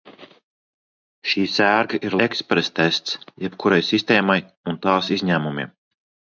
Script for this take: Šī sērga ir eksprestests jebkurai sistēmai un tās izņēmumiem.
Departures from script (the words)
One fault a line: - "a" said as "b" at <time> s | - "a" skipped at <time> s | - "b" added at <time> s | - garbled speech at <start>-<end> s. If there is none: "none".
none